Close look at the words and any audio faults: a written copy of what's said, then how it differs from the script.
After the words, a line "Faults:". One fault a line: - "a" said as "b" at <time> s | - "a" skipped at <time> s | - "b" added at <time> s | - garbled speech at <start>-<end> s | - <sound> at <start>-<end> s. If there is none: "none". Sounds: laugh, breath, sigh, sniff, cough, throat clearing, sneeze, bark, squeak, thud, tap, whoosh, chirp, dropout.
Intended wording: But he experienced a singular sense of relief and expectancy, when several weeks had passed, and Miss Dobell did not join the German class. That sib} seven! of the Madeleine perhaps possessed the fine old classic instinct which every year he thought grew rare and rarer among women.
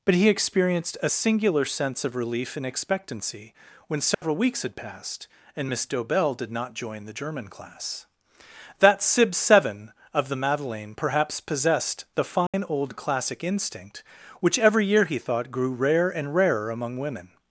But he experienced a singular sense of relief and expectancy, when several weeks had passed, and Miss Dobell did not join the German class. That sib} seven! of the Madeleine perhaps possessed the fine old classic instinct which every year he thought grew rare and rarer among women.
Faults:
- dropout at 4.1-4.2 s
- dropout at 12.5-12.5 s